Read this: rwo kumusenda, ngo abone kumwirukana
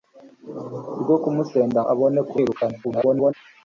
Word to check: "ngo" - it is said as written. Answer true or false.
false